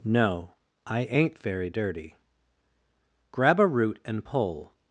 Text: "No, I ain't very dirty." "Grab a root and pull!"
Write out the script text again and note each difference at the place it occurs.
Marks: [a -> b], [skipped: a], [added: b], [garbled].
"No, I ain't very dirty." "Grab a root and pull!"